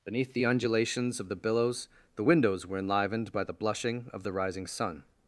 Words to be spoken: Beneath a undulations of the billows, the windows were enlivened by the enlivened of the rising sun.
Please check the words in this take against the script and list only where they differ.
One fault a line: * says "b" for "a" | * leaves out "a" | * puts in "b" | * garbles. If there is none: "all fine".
* says "the" for "a"
* says "blushing" for "enlivened"